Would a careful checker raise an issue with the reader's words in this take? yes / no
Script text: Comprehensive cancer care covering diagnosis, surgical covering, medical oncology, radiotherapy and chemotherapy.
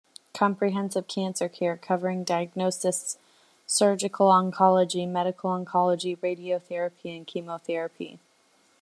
yes